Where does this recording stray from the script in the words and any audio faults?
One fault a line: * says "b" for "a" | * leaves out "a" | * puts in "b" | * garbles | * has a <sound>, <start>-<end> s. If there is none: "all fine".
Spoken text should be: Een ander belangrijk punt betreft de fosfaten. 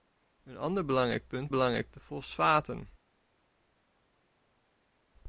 * says "belangrijk" for "betreft"